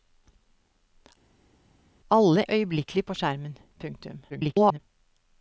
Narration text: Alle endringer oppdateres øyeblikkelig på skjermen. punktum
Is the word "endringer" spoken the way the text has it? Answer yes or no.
no